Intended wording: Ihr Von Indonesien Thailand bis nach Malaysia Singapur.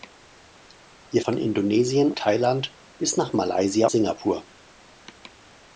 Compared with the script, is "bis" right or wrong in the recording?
right